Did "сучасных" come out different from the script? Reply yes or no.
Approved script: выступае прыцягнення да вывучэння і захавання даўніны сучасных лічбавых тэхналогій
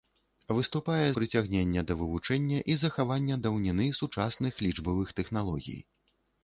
no